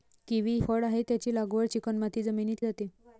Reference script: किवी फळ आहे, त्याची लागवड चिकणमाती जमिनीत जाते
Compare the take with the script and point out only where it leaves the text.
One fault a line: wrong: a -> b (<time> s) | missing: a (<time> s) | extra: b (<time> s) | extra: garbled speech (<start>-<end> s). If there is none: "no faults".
no faults